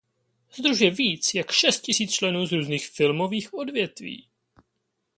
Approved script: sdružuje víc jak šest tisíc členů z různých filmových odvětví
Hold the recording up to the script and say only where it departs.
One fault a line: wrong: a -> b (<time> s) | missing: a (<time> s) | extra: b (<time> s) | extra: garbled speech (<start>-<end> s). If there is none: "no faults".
no faults